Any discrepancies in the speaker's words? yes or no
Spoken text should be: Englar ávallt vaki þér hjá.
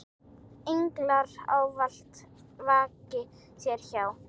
no